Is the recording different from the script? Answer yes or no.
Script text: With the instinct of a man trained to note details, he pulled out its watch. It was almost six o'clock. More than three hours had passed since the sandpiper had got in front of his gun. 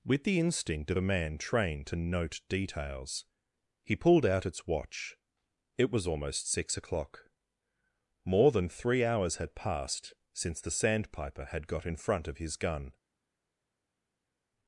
no